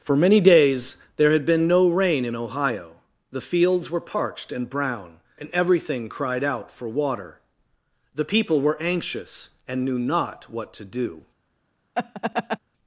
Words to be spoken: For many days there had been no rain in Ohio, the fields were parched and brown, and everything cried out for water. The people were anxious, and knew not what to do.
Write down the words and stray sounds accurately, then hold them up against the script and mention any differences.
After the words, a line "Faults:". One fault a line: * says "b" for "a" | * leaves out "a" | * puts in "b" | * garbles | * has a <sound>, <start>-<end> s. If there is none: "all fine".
For many days there had been no rain in Ohio, the fields were parched and brown, and everything cried out for water. The people were anxious, and knew not what to do.
Faults:
* has a laugh, 11.9-12.6 s